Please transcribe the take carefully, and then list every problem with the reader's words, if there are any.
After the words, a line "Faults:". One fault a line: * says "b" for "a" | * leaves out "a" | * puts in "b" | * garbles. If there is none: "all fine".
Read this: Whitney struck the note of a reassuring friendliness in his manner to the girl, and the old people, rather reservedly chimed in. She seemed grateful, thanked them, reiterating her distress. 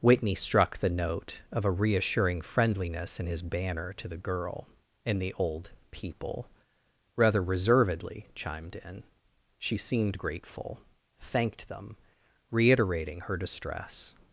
Whitney struck the note of a reassuring friendliness in his banner to the girl, and the old people, rather reservedly chimed in. She seemed grateful, thanked them, reiterating her distress.
Faults:
* says "banner" for "manner"